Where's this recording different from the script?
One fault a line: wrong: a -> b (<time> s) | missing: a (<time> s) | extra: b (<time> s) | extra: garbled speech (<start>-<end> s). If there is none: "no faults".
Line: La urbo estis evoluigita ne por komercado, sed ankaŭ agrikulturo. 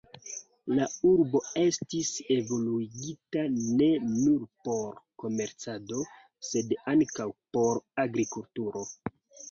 extra: nur (4.1 s)
extra: por (7.6 s)